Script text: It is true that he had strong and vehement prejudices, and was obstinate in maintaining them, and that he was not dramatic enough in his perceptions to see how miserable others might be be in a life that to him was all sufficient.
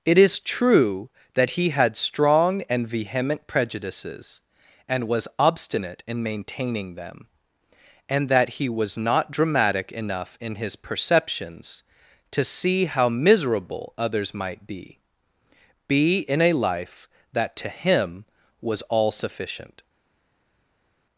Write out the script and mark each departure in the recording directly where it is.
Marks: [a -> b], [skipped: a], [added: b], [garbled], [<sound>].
It is true that he had strong and vehement prejudices, and was obstinate in maintaining them, and that he was not dramatic enough in his perceptions to see how miserable others might be be in a life that to him was all sufficient.